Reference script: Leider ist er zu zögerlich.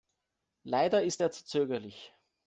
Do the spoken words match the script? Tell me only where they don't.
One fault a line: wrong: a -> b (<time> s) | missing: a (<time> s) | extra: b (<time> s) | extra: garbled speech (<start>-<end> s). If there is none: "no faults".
no faults